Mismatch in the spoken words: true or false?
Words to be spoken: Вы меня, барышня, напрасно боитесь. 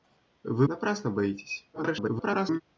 true